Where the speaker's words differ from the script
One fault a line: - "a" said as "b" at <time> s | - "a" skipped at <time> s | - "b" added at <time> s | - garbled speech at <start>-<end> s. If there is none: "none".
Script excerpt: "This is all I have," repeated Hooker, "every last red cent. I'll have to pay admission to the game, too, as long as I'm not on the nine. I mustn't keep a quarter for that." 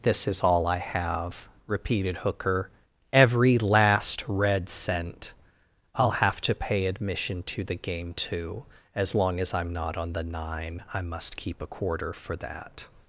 - "mustn't" said as "must" at 11.0 s